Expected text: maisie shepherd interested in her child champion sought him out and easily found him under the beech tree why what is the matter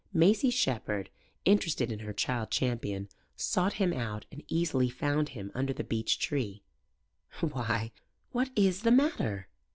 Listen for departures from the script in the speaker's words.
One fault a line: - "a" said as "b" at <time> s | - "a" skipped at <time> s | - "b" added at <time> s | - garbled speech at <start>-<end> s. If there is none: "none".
none